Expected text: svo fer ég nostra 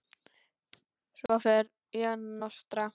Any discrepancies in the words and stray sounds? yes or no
yes